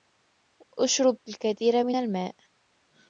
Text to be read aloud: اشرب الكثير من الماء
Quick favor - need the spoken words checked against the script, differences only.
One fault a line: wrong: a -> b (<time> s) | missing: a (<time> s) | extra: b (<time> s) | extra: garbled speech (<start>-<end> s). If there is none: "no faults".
no faults